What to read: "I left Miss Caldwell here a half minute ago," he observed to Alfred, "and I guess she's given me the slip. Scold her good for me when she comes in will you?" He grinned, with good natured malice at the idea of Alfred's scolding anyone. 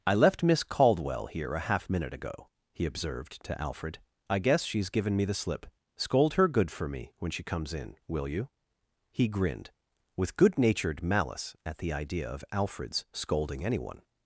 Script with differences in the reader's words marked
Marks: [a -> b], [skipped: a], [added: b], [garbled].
"I left Miss Caldwell here a half minute ago," he observed to Alfred, [skipped: "and] I guess she's given me the slip. Scold her good for me when she comes in will you?" He grinned, with good natured malice at the idea of Alfred's scolding anyone.